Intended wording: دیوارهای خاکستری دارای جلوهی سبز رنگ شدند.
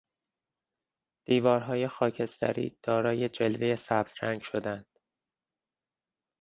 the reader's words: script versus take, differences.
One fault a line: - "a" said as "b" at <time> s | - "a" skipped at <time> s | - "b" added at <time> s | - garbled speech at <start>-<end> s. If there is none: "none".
none